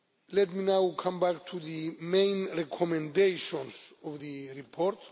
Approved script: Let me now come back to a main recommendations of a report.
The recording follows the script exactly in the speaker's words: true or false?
false